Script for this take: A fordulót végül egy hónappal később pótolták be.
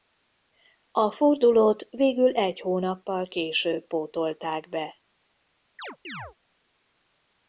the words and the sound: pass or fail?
fail